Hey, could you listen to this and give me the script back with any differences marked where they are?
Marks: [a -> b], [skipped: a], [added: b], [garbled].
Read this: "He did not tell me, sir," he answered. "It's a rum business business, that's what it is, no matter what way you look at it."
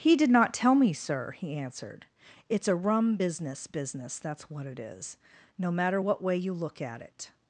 "He did not tell me, sir," he answered. "It's a rum business business, that's what it is, no matter what way you look at it."